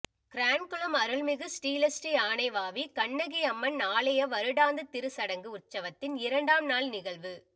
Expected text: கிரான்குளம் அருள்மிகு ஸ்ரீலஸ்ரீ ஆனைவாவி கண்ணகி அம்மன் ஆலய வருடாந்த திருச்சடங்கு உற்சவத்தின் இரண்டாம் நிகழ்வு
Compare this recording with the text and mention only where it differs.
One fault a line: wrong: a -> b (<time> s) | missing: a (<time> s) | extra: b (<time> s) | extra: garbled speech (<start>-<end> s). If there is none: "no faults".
extra: நாள் (6.7 s)